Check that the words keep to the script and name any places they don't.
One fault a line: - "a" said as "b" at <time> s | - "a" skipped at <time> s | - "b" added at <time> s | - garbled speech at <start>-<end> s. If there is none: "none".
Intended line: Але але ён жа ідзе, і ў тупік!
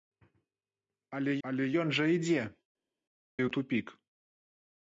none